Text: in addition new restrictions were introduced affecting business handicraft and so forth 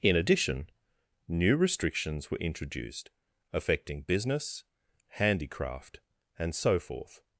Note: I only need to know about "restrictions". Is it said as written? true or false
true